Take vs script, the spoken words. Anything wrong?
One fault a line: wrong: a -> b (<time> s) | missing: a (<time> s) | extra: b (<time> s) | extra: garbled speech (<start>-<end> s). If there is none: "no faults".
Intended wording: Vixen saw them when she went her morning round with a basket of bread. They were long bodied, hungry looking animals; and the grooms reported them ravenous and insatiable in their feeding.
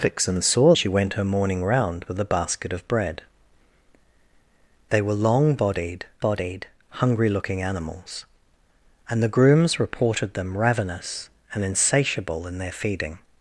missing: them when (0.7 s)
extra: bodied (6.2 s)